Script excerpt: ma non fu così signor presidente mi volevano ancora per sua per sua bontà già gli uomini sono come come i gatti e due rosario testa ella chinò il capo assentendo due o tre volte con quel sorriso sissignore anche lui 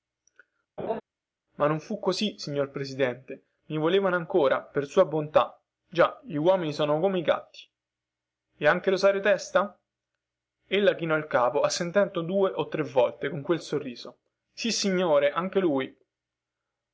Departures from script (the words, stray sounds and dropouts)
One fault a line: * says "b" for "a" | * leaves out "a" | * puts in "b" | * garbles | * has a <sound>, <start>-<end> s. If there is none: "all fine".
* has a laugh, 0.8-1.0 s
* leaves out "per sua"
* leaves out "come"
* says "anche" for "due"